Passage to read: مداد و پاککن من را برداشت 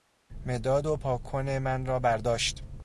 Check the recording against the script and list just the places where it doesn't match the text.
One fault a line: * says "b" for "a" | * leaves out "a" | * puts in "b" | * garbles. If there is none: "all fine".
all fine